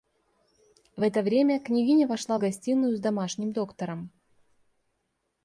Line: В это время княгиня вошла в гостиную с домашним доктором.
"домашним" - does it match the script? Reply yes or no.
yes